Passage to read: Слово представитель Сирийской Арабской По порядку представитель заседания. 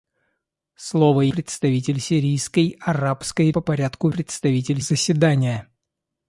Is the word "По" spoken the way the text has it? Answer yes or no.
yes